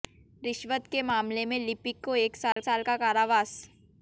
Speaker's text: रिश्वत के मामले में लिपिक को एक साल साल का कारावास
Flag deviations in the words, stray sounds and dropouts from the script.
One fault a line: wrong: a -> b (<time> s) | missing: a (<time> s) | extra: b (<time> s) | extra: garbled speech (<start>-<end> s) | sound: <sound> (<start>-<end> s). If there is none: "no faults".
sound: dropout (2.5-2.6 s)